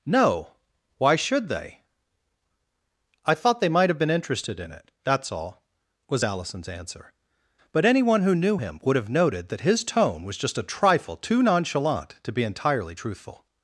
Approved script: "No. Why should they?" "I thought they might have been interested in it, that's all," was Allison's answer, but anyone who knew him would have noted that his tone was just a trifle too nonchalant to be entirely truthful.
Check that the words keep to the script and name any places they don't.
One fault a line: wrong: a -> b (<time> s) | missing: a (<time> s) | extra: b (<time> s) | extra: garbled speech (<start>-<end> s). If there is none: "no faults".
no faults